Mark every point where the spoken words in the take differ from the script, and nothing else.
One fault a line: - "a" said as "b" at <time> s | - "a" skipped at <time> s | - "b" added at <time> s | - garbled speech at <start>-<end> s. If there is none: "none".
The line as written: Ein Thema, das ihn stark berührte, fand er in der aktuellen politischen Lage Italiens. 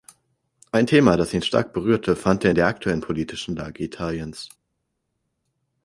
none